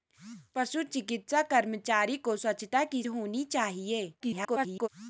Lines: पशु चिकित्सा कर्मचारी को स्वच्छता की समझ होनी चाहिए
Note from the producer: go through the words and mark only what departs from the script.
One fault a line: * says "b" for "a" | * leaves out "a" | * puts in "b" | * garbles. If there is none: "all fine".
* leaves out "समझ"
* garbles